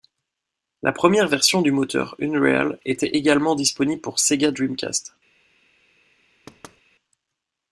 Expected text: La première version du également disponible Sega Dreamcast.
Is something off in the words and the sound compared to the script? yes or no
yes